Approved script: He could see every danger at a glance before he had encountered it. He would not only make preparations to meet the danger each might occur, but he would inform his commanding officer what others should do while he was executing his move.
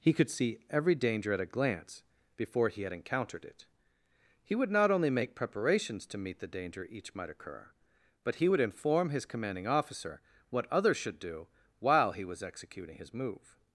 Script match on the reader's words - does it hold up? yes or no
yes